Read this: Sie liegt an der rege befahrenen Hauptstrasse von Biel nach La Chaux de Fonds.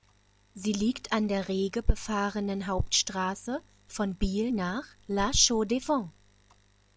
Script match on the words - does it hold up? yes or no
yes